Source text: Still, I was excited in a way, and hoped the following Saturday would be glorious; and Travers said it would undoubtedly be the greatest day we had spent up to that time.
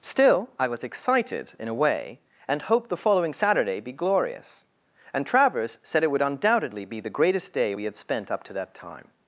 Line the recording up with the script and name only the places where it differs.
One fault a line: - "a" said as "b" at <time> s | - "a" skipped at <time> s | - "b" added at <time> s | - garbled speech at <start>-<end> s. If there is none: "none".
- "would" skipped at 3.8 s